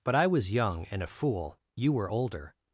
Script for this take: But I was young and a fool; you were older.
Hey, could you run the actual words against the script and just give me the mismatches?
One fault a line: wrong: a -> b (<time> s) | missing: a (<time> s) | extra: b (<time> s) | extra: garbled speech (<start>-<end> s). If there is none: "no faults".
no faults